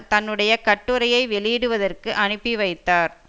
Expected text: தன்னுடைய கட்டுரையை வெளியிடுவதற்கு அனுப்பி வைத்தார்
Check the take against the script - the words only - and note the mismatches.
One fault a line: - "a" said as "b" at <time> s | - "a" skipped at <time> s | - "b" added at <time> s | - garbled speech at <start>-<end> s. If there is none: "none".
none